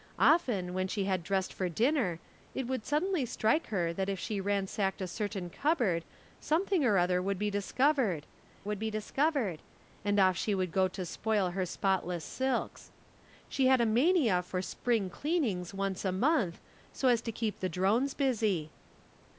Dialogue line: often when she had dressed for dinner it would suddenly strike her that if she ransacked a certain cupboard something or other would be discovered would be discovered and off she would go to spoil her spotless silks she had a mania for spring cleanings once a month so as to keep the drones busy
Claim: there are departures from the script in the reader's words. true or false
false